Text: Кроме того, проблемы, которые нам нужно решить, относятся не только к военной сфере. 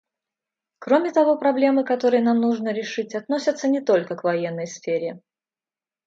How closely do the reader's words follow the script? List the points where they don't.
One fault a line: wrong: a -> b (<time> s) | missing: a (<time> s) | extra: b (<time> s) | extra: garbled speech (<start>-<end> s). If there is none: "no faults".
no faults